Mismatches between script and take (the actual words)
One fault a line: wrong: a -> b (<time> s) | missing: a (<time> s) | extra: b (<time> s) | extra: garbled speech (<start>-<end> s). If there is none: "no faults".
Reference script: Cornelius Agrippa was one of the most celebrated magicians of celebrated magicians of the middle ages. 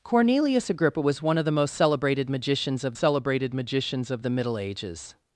no faults